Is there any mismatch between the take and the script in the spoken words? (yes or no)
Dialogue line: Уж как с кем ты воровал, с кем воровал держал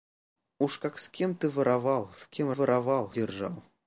no